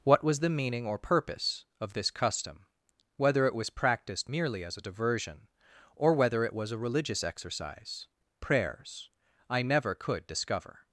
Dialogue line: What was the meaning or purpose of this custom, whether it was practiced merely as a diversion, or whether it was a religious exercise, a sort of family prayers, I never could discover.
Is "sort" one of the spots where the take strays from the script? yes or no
yes